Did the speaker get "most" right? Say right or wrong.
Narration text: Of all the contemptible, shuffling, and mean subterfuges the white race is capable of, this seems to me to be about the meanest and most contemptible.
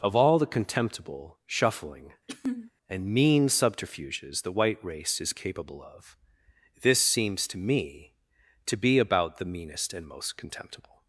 right